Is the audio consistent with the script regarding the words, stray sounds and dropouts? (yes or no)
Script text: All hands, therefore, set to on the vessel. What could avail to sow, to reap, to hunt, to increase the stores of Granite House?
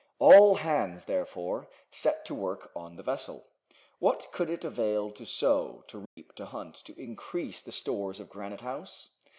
no